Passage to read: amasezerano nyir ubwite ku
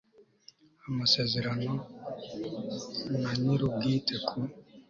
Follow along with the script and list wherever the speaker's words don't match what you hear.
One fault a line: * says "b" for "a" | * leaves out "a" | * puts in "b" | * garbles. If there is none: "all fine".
* puts in "na"